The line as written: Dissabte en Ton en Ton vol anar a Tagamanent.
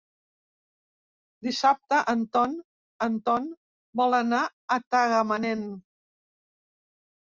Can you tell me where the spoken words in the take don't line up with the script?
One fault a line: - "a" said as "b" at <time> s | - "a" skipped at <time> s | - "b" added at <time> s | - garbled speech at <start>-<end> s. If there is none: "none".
none